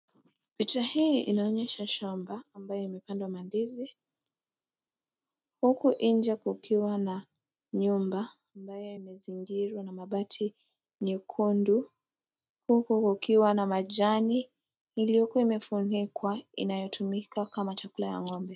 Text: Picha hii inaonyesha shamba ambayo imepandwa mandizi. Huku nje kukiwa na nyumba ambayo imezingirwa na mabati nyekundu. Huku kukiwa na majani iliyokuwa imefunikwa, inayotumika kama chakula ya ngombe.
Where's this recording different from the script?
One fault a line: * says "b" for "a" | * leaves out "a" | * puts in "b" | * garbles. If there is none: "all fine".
all fine